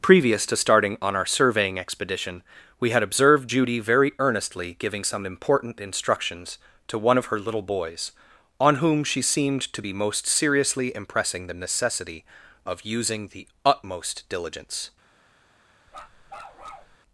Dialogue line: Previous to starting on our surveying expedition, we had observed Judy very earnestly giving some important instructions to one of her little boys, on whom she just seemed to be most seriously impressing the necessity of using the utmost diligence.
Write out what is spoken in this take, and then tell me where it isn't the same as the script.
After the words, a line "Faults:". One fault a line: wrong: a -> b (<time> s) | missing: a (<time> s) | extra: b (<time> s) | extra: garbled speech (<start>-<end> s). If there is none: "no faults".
Previous to starting on our surveying expedition, we had observed Judy very earnestly giving some important instructions to one of her little boys, on whom she seemed to be most seriously impressing the necessity of using the utmost diligence.
Faults:
missing: just (9.2 s)